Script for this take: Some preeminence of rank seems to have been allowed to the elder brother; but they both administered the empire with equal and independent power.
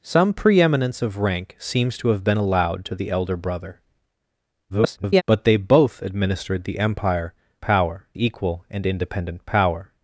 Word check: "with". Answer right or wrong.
wrong